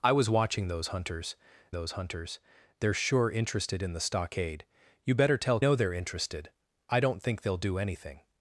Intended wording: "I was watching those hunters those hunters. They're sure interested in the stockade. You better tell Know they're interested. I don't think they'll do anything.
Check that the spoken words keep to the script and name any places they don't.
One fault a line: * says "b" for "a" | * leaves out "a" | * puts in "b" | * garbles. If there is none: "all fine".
all fine